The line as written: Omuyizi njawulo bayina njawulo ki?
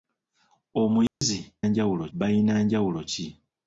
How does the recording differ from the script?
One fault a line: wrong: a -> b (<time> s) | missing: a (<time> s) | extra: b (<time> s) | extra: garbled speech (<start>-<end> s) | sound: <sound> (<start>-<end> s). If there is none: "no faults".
sound: dropout (1.1-1.2 s)